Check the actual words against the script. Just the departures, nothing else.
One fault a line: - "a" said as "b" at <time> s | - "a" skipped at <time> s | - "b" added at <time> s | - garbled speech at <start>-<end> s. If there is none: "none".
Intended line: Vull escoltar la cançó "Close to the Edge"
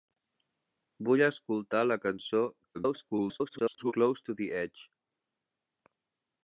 - garbled speech at 2.7-3.9 s